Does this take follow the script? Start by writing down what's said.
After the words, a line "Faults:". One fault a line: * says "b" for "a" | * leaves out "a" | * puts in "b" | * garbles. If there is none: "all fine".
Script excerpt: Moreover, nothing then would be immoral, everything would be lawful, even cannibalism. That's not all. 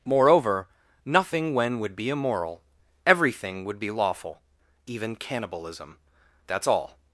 Moreover, nothing when would be immoral, everything would be lawful, even cannibalism. That's all.
Faults:
* says "when" for "then"
* leaves out "not"